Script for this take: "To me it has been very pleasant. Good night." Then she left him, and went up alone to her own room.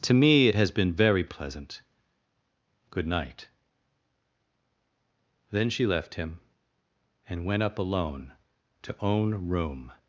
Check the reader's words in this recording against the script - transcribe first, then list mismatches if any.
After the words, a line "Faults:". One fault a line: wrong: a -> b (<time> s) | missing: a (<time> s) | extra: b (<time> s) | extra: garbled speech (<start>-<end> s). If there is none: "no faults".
"To me it has been very pleasant. Good night." Then she left him, and went up alone to own room.
Faults:
missing: her (9.0 s)